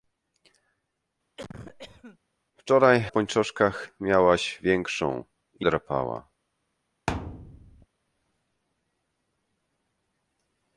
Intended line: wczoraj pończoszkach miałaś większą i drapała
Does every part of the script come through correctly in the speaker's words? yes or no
yes